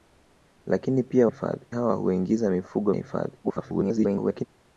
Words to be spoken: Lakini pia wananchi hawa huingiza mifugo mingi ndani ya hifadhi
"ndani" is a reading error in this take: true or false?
true